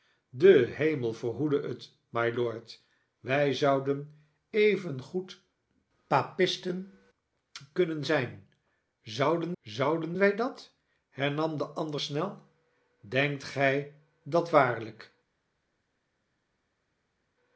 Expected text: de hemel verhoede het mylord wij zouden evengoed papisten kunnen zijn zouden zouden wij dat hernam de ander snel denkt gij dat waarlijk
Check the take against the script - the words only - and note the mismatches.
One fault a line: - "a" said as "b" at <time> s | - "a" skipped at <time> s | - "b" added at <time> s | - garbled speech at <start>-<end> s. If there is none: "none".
none